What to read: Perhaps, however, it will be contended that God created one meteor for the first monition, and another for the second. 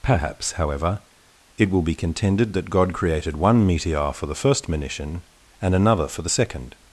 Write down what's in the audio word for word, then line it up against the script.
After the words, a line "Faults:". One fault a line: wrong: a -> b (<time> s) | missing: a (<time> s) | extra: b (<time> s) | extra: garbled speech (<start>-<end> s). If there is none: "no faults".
Perhaps, however, it will be contended that God created one meteor for the first monition, and another for the second.
Faults:
no faults